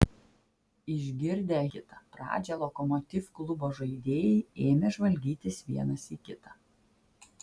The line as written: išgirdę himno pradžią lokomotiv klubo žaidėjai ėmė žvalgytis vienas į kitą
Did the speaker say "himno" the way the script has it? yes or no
no